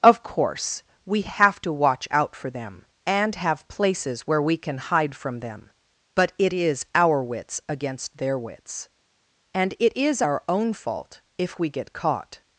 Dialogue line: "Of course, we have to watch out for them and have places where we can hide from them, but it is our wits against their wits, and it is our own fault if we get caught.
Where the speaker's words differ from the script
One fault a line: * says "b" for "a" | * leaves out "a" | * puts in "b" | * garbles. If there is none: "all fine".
all fine